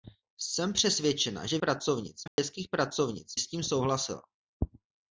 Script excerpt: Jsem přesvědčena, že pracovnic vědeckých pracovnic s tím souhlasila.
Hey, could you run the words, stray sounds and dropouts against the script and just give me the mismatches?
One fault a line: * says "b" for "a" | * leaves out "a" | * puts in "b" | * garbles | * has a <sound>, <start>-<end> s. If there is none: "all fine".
* has a dropout, 2.3-2.4 s